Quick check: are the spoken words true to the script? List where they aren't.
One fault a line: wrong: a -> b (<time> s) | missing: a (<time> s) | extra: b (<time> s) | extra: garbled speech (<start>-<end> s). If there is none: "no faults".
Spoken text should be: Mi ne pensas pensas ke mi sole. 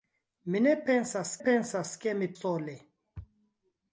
no faults